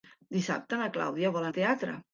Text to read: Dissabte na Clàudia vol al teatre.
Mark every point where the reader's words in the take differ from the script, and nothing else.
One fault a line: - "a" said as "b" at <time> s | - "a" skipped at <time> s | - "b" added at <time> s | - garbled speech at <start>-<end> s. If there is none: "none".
none